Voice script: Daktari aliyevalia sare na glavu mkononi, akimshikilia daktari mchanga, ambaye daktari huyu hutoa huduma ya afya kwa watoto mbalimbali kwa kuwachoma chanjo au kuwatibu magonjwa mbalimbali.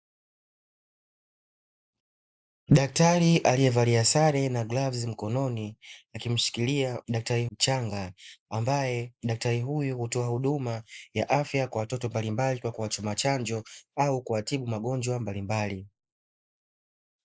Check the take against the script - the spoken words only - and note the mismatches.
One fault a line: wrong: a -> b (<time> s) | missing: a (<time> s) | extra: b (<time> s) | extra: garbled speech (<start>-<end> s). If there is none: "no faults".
no faults